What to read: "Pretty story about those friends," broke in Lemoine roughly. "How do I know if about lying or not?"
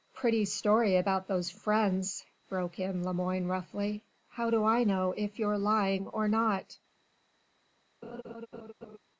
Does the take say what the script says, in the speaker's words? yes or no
no